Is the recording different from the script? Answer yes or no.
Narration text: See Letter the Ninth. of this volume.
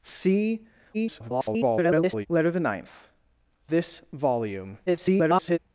yes